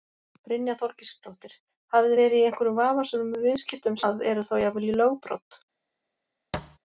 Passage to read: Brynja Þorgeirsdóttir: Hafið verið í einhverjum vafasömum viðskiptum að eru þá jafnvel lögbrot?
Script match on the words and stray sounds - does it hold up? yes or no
no